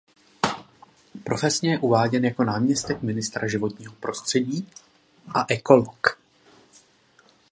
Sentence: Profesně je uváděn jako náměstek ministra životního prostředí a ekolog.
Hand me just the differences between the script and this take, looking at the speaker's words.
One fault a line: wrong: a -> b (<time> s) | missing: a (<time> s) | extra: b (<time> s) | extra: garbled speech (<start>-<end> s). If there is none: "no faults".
no faults